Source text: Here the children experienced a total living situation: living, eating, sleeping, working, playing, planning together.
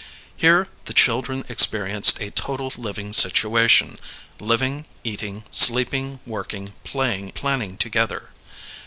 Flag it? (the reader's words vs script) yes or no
no